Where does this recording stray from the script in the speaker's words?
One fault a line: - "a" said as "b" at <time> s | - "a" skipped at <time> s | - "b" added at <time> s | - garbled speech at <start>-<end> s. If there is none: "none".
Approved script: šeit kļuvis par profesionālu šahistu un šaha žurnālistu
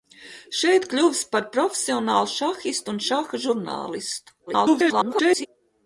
- garbled speech at 4.5-5.5 s